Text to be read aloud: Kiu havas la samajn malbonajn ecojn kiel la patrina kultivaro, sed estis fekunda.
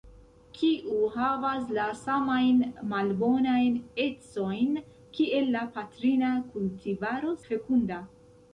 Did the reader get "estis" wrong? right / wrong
wrong